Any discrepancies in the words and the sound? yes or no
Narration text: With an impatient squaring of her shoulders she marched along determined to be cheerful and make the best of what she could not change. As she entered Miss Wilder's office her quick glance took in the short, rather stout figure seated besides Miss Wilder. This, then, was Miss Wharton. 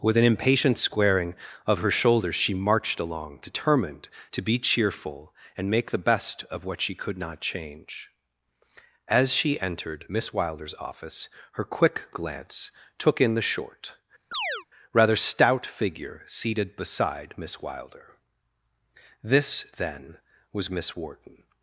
yes